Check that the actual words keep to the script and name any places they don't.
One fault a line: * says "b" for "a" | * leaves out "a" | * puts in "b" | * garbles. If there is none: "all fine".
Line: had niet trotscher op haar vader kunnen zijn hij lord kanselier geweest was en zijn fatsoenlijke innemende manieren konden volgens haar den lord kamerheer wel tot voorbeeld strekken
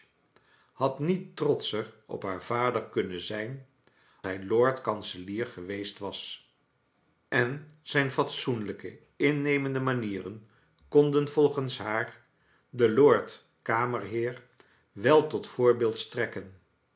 all fine